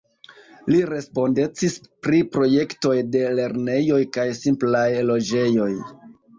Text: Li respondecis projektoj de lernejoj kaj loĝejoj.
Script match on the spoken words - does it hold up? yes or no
no